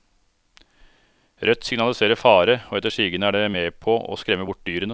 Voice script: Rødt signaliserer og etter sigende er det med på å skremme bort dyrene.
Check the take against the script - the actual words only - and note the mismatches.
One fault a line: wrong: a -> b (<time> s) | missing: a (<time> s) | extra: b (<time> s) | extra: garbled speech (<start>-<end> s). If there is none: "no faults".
extra: fare (2.2 s)